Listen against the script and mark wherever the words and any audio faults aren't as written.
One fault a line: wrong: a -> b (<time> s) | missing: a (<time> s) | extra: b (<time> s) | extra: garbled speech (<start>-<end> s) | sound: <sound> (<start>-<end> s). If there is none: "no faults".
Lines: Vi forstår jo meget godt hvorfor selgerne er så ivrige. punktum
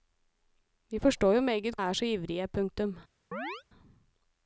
missing: godt hvorfor selgerne (1.8 s)
sound: chirp (3.3-3.6 s)